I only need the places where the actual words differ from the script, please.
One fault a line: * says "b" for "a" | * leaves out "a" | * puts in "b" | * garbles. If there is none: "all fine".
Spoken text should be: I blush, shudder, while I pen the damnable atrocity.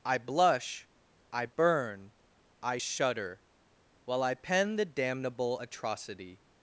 * puts in "I burn I"